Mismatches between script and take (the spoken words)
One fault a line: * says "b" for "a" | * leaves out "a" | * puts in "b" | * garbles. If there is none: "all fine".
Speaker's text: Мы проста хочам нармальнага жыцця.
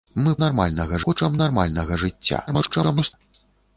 * says "нармальнага" for "проста"
* garbles